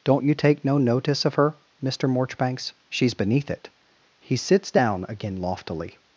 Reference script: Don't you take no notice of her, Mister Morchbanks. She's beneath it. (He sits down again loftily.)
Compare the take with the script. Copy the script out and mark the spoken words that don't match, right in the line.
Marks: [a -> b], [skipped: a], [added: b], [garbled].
Don't you take no notice of her, Mister Morchbanks. She's beneath it. (He sits down again loftily.)